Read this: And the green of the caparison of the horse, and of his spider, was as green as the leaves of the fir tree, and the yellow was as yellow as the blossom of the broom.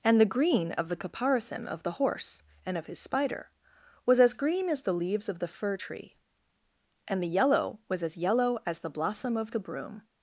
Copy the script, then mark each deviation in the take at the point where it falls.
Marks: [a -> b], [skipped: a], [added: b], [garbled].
And the green of the caparison of the horse, and of his spider, was as green as the leaves of the fir tree, and the yellow was as yellow as the blossom of the broom.